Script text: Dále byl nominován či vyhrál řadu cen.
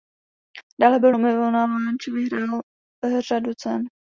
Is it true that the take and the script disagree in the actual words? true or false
false